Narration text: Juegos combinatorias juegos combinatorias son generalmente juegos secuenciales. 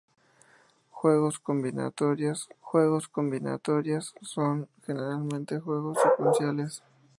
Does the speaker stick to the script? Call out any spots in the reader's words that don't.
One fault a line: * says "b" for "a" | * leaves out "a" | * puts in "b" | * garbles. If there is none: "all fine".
all fine